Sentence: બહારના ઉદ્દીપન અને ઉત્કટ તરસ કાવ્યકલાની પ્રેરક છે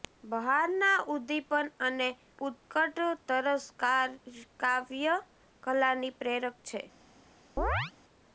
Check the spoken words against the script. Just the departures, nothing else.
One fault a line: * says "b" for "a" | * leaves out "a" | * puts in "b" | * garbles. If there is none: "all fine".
all fine